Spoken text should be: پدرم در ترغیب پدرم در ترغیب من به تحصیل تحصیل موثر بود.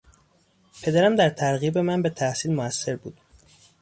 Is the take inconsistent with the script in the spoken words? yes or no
yes